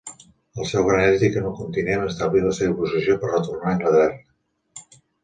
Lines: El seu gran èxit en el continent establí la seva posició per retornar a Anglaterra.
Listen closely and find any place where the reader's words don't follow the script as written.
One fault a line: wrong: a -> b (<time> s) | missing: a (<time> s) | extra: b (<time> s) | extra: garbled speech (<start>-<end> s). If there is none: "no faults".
no faults